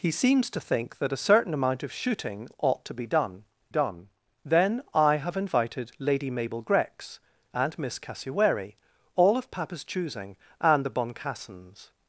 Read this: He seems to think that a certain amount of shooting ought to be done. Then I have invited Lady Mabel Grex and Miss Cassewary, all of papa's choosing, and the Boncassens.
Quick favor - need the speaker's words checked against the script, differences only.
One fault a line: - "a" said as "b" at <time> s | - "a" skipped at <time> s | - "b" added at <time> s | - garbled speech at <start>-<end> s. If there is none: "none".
- "done" added at 3.7 s